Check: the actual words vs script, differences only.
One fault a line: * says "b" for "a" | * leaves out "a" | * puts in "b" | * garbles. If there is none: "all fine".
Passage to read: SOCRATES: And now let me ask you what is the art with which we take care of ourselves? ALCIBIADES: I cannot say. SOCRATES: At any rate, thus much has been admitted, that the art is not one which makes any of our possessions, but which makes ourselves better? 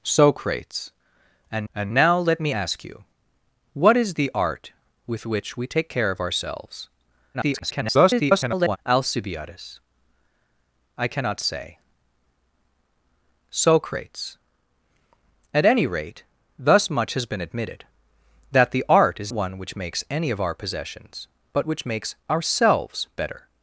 * puts in "And"
* garbles
* leaves out "not"